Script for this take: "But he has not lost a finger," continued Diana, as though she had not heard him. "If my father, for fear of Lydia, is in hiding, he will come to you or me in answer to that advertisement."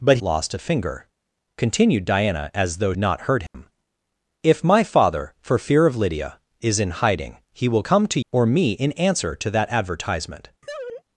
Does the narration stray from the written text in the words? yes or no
yes